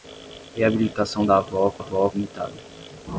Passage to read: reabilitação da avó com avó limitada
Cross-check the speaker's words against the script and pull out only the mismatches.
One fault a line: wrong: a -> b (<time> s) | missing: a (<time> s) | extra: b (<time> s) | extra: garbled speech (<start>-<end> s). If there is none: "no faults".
no faults